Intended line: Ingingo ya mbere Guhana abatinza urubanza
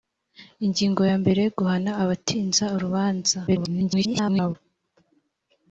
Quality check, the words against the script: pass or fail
fail